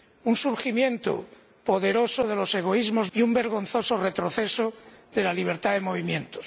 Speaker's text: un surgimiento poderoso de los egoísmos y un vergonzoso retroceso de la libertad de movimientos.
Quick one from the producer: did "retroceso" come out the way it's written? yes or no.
yes